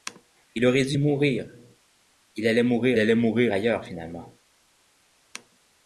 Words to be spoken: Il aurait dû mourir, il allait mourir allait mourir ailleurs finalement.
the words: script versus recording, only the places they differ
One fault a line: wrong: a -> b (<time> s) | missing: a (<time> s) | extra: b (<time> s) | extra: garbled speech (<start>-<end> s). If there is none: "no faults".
no faults